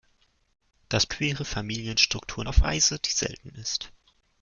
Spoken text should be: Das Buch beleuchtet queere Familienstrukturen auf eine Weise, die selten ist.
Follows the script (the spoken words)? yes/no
no